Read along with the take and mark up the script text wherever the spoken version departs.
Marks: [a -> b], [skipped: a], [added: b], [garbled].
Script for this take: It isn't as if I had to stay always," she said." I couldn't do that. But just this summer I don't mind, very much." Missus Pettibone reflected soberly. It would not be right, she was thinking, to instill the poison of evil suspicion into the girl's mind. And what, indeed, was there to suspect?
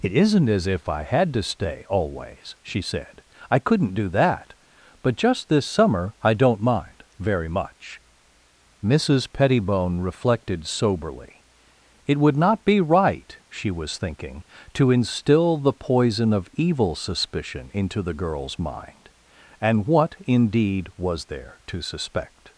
It isn't as if I had to stay always," she said." I couldn't do that. But just this summer I don't mind, very much." Missus Pettibone reflected soberly. It would not be right, she was thinking, to instill the poison of evil suspicion into the girl's mind. And what, indeed, was there to suspect?